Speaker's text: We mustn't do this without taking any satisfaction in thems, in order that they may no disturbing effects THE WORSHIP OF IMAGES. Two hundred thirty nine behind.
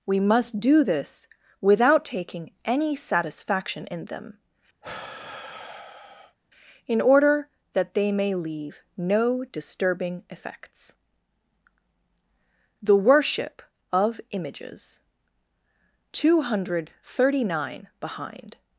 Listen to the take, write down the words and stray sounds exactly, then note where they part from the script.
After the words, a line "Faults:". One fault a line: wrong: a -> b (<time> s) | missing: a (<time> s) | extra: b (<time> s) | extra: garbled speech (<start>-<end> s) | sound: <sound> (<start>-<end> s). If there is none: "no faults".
We must do this without taking any satisfaction in them, in order that they may leave no disturbing effects THE WORSHIP OF IMAGES. Two hundred thirty nine behind.
Faults:
wrong: mustn't -> must (0.2 s)
wrong: thems -> them (4.1 s)
sound: sigh (4.8-6.4 s)
extra: leave (8.3 s)